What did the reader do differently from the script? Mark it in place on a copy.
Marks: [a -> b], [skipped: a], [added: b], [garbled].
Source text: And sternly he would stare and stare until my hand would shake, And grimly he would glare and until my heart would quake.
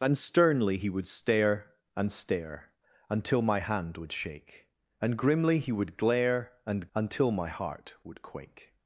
And sternly he would stare and stare until my hand would shake, And grimly he would glare and until my heart would quake.